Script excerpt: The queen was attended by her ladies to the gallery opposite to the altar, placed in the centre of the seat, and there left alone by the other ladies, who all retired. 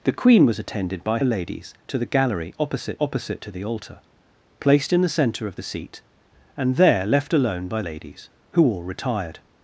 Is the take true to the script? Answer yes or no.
no